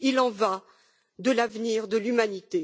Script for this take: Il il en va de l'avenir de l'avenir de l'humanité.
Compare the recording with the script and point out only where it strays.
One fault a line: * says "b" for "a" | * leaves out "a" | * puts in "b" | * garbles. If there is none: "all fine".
* leaves out "il"
* leaves out "l'avenir de"